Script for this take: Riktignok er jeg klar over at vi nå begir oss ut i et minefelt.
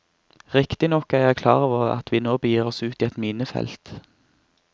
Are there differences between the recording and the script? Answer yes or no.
no